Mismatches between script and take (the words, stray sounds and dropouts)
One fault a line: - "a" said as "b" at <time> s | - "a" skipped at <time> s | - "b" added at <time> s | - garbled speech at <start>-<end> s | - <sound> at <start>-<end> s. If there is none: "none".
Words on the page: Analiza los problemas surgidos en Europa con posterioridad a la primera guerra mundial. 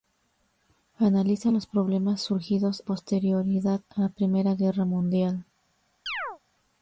- "en Europa con" skipped at 2.8 s
- chirp at 6.1-6.4 s